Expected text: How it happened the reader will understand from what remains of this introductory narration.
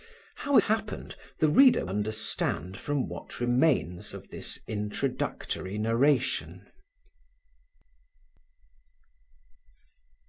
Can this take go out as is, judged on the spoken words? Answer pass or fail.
fail